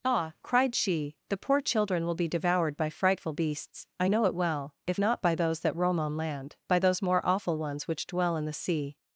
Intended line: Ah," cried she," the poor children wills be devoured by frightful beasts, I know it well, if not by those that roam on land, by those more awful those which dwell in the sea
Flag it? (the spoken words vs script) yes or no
yes